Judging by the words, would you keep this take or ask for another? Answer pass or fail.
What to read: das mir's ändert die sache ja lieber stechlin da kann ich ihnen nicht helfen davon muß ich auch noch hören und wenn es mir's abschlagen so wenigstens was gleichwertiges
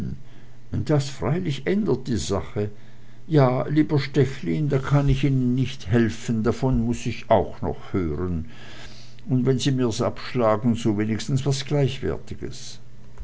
fail